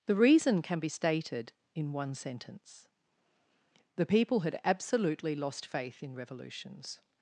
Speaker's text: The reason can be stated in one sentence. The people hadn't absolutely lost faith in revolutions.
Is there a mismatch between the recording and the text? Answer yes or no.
yes